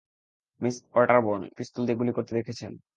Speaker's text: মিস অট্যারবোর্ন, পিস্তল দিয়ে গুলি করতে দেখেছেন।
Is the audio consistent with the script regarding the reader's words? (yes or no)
yes